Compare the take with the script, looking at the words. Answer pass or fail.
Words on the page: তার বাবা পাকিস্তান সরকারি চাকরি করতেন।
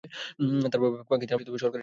pass